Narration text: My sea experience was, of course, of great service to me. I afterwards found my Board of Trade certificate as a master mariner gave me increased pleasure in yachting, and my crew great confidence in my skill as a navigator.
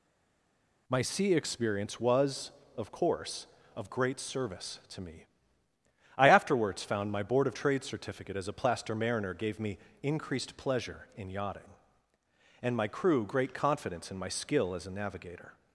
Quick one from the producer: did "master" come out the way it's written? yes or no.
no